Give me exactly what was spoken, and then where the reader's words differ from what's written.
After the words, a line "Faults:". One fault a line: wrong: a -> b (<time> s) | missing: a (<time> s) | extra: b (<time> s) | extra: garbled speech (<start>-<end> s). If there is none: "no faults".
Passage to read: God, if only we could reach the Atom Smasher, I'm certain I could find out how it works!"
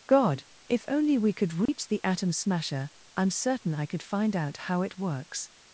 God, if only we could reach the Atom Smasher, I'm certain I could find out how it works!"
Faults:
no faults